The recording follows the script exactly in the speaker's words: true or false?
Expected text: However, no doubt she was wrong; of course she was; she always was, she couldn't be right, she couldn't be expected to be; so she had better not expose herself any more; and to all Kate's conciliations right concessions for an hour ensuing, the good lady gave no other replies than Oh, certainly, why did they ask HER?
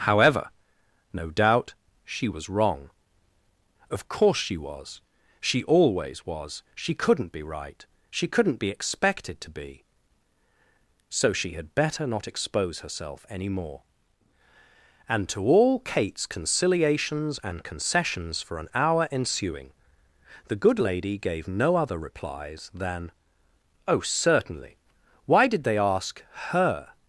false